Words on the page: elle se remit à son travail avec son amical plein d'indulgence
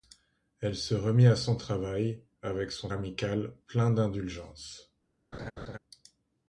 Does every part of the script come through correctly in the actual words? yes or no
yes